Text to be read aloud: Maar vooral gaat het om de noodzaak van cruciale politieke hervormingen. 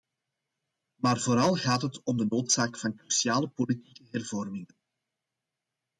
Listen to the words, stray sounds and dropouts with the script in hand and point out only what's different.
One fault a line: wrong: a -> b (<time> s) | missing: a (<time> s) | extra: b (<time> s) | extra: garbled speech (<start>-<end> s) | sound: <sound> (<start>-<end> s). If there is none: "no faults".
no faults